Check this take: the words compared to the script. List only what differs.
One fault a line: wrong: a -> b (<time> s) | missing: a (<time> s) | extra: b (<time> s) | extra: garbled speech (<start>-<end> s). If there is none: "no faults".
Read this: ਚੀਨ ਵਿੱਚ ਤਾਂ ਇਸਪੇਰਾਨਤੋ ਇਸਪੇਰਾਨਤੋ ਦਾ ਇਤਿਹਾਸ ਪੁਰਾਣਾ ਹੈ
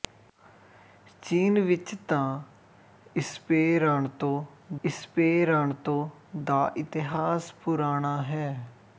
no faults